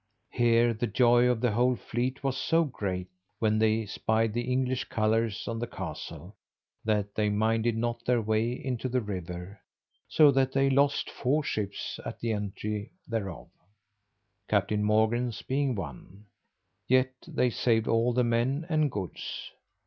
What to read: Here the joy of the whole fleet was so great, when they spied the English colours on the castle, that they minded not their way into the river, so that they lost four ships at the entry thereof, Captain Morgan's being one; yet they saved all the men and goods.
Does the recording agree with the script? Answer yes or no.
yes